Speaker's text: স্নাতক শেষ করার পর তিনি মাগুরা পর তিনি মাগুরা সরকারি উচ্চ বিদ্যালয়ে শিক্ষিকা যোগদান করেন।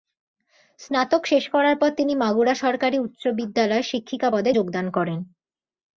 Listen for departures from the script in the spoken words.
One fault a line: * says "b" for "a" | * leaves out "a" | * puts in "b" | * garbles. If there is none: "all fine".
* leaves out "পর তিনি মাগুরা"
* puts in "পদে"